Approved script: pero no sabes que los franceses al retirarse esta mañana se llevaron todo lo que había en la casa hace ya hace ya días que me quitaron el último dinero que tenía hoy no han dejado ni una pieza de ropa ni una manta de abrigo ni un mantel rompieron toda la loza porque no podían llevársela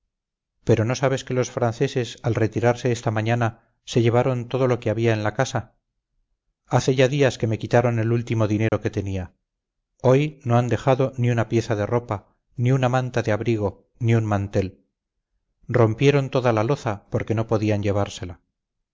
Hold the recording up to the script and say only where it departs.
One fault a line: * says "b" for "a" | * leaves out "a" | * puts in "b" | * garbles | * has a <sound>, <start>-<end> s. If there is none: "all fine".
* leaves out "hace ya"
* has a dropout, 8.7-8.7 s